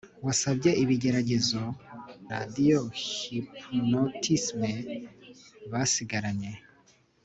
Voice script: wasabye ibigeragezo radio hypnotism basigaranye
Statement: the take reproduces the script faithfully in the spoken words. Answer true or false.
true